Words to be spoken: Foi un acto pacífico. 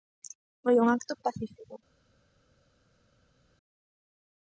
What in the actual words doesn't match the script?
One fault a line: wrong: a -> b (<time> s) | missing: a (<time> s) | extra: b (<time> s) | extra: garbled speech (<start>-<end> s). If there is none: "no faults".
no faults